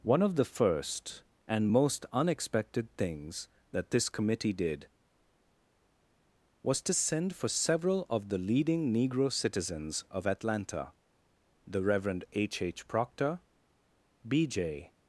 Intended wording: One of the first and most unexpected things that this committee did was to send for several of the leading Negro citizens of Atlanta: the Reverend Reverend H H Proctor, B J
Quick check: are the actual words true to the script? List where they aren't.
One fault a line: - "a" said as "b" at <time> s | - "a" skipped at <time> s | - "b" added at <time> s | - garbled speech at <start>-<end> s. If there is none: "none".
- "Reverend" skipped at 12.2 s